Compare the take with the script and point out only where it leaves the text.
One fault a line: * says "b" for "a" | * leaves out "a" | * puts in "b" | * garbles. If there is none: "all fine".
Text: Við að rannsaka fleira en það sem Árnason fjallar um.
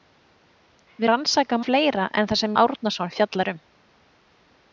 all fine